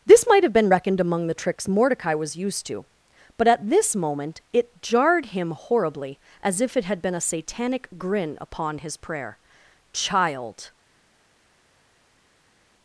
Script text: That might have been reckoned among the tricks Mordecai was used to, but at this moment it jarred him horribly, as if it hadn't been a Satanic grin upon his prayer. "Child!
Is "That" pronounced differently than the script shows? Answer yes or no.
yes